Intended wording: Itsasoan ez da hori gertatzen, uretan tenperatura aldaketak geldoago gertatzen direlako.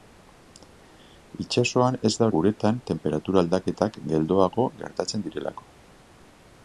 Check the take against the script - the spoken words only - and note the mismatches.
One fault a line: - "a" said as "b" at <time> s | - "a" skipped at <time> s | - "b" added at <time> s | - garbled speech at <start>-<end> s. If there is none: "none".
- "hori gertatzen" skipped at 2.3 s